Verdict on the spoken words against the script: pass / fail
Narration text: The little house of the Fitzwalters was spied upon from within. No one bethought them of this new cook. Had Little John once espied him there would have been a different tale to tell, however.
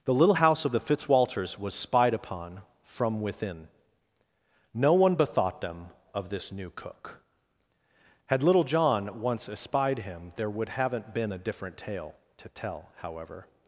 fail